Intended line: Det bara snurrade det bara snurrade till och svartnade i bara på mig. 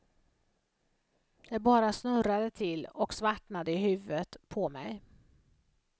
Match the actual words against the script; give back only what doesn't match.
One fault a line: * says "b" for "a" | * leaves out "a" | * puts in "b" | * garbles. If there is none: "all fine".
* leaves out "det bara snurrade"
* says "huvudet" for "bara"